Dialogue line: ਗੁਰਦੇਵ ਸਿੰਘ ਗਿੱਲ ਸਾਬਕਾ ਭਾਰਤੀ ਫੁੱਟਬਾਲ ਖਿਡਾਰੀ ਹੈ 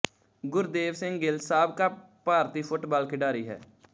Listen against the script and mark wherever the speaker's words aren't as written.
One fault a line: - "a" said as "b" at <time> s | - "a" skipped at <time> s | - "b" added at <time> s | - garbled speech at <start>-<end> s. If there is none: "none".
none